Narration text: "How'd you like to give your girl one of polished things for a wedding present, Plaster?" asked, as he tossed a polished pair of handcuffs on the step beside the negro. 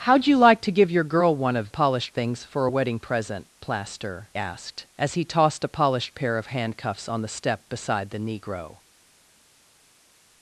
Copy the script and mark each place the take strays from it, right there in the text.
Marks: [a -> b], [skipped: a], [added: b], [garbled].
"How'd you like to give your girl one of polished things for a wedding present, Plaster?" asked, as he tossed a polished pair of handcuffs on the step beside the negro.